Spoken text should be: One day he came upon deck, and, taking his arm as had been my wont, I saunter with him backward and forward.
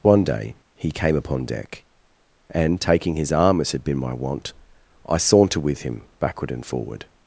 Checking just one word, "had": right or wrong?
right